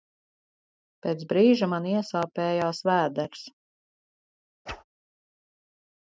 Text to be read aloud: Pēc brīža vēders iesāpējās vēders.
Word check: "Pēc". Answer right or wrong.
right